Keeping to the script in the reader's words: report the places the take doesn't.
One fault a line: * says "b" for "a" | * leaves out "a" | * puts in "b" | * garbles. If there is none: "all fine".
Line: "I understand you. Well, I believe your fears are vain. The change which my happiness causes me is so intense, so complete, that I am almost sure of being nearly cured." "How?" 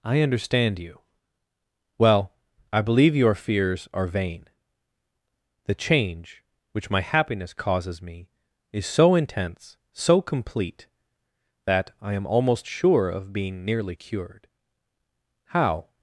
all fine